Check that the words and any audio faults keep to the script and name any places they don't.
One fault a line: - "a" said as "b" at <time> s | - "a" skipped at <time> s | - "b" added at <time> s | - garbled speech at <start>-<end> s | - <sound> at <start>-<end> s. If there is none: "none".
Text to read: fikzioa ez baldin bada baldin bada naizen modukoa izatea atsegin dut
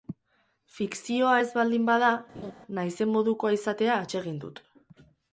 - "baldin bada" skipped at 2.1 s
- laugh at 2.3-2.5 s